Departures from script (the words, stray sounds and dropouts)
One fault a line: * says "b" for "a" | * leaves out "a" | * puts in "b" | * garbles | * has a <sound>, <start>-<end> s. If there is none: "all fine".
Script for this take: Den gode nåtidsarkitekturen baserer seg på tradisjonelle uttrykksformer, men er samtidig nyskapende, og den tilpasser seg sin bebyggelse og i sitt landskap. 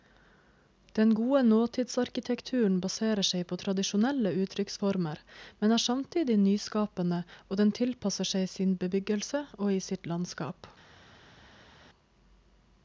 all fine